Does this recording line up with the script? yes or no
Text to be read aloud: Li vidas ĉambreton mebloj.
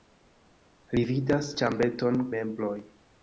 yes